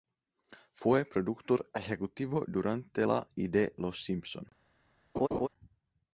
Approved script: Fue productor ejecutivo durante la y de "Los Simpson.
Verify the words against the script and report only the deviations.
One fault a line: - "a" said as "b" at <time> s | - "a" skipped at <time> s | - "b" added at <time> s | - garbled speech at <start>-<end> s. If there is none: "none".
none